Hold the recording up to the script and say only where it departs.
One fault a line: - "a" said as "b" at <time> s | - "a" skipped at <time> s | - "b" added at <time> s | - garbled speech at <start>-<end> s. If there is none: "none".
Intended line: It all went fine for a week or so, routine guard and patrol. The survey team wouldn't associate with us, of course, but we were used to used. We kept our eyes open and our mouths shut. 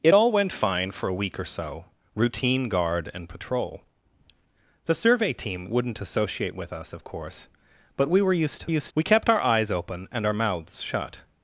none